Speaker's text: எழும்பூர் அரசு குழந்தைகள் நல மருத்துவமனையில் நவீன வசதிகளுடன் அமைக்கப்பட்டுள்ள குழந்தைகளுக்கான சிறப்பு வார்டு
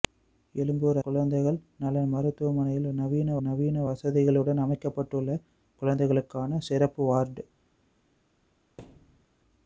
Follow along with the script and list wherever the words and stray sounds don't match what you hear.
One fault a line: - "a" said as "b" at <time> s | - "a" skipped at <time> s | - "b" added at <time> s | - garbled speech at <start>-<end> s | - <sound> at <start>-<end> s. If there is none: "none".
- "அரசு" skipped at 1.0 s
- "நவீன" added at 3.4 s
- thud at 8.8-9.3 s